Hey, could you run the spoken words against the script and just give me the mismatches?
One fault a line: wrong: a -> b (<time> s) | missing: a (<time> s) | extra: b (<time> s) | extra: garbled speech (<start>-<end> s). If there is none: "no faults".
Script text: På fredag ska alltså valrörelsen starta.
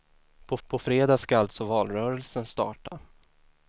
extra: på (0.7 s)